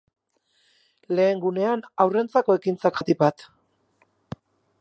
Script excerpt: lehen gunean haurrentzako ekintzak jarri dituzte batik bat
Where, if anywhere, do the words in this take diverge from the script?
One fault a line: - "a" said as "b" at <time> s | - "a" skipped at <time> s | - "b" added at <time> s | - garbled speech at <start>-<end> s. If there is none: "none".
- "jarri dituzte" skipped at 3.0 s